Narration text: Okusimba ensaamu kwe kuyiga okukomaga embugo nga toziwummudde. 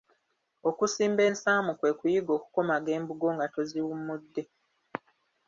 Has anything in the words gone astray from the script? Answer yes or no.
no